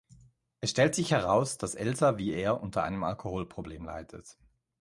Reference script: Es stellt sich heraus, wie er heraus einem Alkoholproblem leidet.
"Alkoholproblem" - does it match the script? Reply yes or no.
yes